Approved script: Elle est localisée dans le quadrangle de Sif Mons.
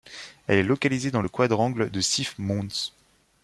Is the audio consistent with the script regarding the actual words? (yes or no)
yes